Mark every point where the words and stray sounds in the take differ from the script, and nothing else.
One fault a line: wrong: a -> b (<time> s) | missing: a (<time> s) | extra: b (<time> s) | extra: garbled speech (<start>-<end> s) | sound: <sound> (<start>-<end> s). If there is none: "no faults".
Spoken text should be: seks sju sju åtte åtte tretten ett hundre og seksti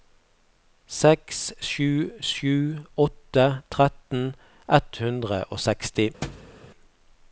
missing: åtte (3.5 s)
sound: thud (6.2-6.5 s)